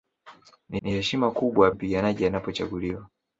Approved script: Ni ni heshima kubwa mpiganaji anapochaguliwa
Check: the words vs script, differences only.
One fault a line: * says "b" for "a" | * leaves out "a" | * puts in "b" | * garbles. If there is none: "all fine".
all fine